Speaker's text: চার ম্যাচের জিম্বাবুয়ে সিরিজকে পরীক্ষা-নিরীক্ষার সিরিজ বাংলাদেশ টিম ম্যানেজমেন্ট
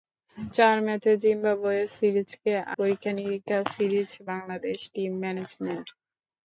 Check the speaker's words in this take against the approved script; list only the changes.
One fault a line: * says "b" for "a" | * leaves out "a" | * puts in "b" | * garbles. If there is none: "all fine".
all fine